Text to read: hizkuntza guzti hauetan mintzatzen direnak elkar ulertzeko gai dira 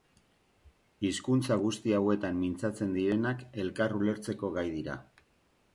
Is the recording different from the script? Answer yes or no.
no